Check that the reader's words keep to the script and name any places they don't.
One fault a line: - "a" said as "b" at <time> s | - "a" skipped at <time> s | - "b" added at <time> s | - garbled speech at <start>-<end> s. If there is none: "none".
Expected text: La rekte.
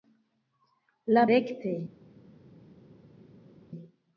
none